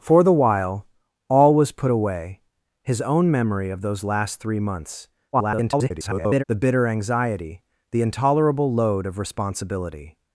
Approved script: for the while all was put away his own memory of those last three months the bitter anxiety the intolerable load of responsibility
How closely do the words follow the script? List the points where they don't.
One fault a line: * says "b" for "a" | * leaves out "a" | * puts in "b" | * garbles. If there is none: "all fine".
* garbles